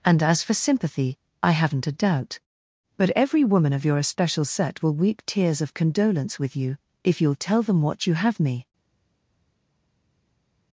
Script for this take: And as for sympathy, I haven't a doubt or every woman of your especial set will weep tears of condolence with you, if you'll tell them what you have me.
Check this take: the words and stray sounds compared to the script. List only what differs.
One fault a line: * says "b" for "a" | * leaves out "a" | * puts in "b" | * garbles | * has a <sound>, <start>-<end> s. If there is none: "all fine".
* says "but" for "or"